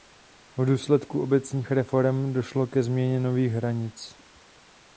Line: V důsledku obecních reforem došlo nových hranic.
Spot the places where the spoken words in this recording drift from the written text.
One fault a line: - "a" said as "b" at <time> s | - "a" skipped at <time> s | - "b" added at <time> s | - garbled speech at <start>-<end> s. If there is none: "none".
- "ke změně" added at 2.7 s